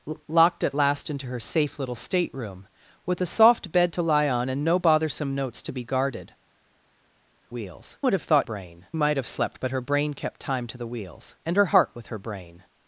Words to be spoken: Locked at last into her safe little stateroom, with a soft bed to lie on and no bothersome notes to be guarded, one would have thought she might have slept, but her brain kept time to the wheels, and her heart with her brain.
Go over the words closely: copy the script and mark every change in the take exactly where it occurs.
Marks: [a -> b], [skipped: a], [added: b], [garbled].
Locked at last into her safe little stateroom, with a soft bed to lie on and no bothersome notes to be guarded, [one -> wheels] would have thought [she -> brain] might have slept, but her brain kept time to the wheels, and her heart with her brain.